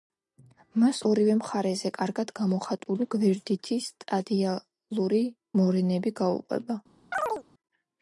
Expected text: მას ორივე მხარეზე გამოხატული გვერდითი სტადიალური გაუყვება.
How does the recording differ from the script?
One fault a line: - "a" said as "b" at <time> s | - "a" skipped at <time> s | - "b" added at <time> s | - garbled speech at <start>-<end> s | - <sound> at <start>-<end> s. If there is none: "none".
- "კარგად" added at 2.0 s
- "მორენები" added at 5.6 s
- chirp at 7.1-7.4 s